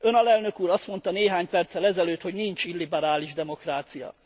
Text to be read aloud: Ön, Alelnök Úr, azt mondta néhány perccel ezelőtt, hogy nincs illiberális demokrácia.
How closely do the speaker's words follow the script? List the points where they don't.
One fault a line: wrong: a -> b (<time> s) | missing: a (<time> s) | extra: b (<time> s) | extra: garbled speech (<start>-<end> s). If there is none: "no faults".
no faults